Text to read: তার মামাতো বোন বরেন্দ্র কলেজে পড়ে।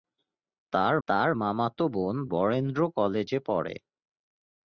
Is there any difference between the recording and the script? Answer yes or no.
yes